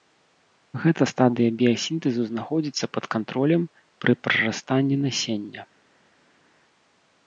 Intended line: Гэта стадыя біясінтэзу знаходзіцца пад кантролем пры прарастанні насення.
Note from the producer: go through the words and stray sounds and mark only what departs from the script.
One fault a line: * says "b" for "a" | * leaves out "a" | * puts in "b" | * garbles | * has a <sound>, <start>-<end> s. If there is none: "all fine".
all fine